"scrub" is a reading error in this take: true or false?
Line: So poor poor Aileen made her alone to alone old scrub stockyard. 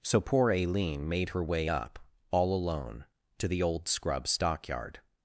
false